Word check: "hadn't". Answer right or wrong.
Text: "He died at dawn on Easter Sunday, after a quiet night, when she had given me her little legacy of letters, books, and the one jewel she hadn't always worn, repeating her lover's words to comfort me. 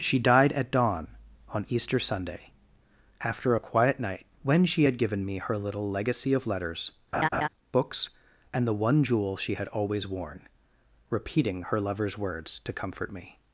wrong